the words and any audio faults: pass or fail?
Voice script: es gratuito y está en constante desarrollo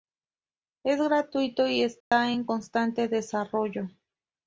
fail